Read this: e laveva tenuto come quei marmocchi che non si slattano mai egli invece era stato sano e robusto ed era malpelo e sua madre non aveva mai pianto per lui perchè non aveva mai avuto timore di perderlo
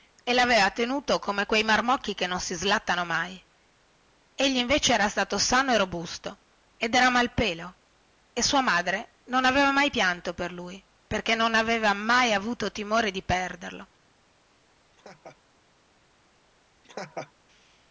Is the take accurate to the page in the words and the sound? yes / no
no